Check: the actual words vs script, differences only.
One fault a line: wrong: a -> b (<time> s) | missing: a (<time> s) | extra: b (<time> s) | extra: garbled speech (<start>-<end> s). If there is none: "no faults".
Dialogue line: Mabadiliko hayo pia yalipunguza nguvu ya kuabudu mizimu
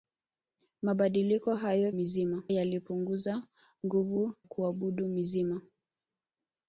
wrong: pia -> mizimu (1.9 s)
missing: ya (4.3 s)